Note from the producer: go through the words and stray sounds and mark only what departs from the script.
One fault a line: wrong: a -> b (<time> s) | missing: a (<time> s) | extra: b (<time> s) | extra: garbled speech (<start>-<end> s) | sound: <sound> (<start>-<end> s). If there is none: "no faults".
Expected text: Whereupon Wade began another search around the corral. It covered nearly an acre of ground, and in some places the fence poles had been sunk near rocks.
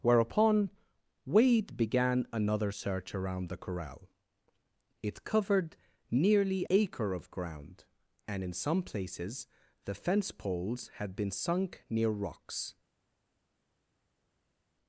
missing: an (6.7 s)